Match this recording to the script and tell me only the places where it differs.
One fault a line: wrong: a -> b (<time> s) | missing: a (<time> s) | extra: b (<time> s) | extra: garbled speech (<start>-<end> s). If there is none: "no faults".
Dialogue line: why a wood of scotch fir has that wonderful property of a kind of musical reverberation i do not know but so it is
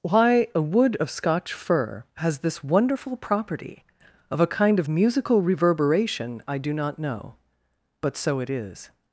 wrong: that -> this (2.4 s)